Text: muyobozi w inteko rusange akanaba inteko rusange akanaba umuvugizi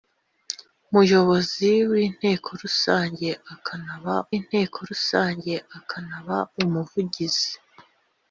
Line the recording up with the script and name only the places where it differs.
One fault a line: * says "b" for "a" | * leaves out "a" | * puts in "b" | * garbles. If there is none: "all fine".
all fine